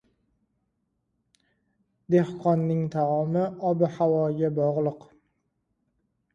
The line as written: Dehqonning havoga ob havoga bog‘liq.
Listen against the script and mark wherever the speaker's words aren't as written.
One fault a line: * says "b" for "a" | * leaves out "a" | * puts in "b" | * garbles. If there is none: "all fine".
* says "taomi" for "havoga"